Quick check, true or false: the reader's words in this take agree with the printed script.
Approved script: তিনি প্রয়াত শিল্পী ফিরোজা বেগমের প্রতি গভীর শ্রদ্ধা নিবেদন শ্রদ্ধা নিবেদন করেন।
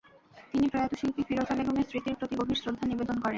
false